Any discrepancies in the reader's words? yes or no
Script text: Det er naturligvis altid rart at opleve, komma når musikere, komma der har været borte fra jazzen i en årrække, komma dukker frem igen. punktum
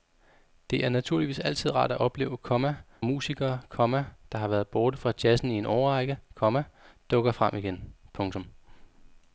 yes